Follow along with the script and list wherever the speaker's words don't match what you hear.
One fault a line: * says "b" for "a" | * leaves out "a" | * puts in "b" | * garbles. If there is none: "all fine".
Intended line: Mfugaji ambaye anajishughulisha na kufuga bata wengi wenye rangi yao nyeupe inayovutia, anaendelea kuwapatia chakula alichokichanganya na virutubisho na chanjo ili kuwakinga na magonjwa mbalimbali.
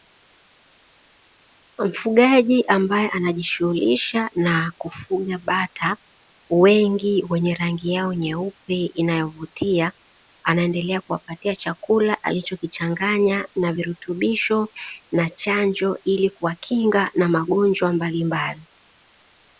all fine